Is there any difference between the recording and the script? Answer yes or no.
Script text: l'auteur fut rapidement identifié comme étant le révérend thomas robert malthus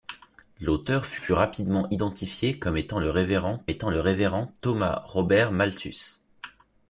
yes